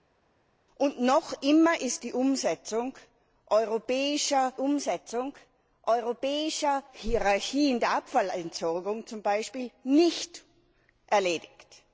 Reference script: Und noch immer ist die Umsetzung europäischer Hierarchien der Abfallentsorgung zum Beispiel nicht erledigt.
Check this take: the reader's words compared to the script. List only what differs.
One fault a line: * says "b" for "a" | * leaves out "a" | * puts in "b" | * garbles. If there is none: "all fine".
* puts in "Umsetzung europäischer"